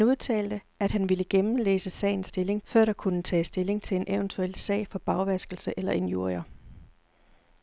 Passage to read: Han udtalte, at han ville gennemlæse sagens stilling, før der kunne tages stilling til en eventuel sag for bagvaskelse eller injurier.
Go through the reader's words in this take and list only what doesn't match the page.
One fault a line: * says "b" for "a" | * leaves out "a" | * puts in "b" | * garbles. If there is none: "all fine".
all fine